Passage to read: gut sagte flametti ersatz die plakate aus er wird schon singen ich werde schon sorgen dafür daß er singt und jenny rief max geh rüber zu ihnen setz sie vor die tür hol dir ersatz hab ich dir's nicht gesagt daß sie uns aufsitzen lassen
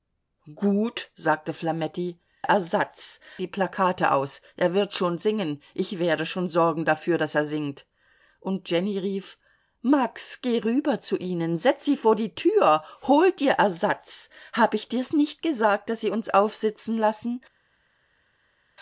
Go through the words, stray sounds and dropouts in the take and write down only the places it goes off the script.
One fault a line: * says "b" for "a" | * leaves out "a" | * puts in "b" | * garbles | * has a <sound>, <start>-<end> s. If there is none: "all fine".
all fine